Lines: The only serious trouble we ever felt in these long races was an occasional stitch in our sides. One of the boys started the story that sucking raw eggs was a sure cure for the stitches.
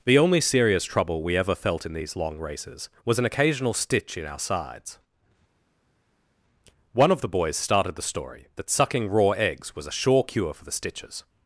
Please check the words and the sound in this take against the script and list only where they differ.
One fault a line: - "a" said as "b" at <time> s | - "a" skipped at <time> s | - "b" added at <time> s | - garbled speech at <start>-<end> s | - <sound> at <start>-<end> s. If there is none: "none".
none